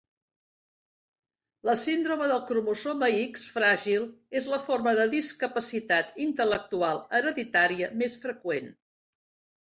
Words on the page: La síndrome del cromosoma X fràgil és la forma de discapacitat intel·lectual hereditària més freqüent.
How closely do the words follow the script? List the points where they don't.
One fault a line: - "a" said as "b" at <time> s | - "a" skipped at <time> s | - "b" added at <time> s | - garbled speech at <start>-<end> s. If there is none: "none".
none